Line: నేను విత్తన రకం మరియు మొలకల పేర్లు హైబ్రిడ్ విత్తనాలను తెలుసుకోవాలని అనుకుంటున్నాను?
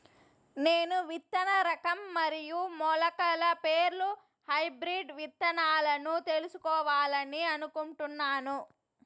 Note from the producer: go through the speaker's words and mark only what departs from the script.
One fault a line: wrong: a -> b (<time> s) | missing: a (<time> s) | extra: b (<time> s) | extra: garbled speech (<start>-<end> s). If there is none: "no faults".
no faults